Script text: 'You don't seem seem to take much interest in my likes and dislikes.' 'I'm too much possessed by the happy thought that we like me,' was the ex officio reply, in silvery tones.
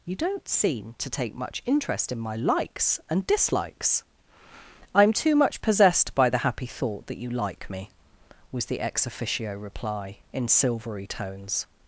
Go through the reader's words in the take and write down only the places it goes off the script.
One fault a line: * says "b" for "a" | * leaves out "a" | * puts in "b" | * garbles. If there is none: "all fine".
* leaves out "seem"
* says "you" for "we"